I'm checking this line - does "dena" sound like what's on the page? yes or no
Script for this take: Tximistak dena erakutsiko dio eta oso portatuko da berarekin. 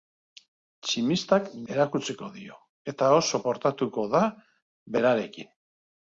no